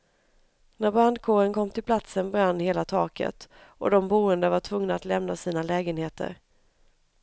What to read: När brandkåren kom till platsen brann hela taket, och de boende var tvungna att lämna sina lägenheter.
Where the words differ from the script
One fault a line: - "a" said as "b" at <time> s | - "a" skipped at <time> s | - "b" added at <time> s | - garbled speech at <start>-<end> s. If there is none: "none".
none